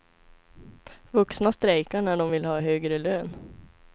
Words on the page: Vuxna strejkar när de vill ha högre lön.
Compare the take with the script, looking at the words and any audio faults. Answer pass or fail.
pass